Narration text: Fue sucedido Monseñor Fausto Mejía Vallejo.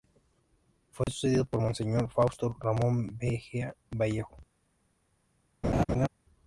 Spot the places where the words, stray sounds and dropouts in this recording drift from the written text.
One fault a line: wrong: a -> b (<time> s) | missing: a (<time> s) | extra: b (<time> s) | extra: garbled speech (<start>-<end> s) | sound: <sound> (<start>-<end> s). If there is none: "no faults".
sound: dropout (1.0-1.1 s)
extra: por (1.4 s)
extra: Ramón (2.6 s)
sound: laugh (5.6-6.1 s)